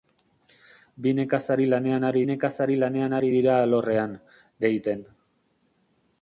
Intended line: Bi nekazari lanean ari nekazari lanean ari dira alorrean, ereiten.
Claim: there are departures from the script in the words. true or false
false